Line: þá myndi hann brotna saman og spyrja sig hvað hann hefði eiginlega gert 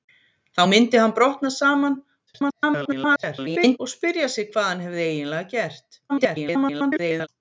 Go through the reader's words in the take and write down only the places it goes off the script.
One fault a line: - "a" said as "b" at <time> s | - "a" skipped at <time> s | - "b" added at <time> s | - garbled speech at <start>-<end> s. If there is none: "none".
- garbled speech at 2.3-3.8 s
- garbled speech at 6.1-7.3 s